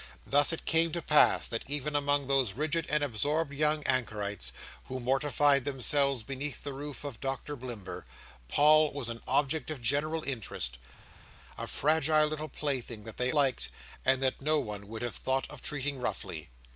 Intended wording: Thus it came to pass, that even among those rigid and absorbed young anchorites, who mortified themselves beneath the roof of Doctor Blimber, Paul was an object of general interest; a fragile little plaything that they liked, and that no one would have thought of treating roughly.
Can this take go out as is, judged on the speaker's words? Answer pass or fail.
pass